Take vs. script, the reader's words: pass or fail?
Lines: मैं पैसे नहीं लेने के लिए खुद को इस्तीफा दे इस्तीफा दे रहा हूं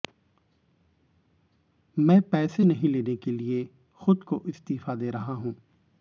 fail